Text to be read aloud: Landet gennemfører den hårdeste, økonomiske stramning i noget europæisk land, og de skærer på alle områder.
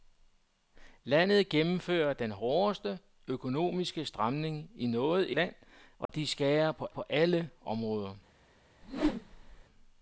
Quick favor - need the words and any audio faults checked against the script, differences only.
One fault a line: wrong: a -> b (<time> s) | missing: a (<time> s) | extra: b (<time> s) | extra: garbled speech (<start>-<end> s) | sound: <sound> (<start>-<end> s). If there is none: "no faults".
missing: europæisk (5.3 s)
sound: dropout (6.1-6.1 s)
extra: på (6.9 s)
sound: whoosh (8.8-9.6 s)